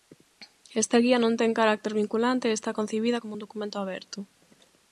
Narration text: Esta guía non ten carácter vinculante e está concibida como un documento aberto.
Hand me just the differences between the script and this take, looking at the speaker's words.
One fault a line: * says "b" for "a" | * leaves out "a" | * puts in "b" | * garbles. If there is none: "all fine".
all fine